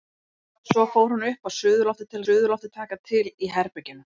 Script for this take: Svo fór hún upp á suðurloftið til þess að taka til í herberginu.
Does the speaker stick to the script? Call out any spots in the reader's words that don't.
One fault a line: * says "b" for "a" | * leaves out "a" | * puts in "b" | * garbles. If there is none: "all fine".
* says "suðurloftið" for "þess"